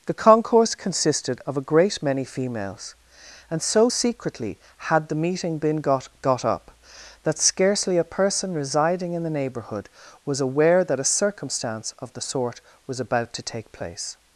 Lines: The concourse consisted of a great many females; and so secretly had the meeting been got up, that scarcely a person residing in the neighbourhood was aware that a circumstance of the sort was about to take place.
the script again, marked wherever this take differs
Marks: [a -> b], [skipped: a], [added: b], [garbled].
The concourse consisted of a great many females; and so secretly had the meeting been got [added: got] up, that scarcely a person residing in the neighbourhood was aware that a circumstance of the sort was about to take place.